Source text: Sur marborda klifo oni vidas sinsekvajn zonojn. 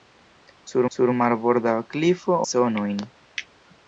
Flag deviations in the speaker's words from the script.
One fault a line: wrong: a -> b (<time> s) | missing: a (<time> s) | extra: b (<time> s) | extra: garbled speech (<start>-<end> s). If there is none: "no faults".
extra: sur (0.9 s)
missing: oni vidas sinsekvajn (2.4 s)